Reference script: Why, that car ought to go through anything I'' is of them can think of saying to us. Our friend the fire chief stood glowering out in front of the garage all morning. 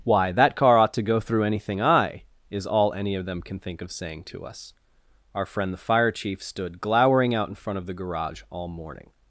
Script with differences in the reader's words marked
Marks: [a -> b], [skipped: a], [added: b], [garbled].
Why, that car ought to go through anything I'' is [added: all any] of them can think of saying to us. Our friend the fire chief stood glowering out in front of the garage all morning.